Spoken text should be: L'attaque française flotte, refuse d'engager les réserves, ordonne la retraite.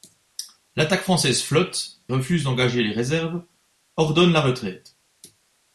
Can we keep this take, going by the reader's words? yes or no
yes